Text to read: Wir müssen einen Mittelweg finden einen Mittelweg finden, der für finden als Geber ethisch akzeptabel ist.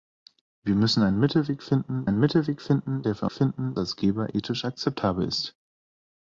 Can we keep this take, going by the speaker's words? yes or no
yes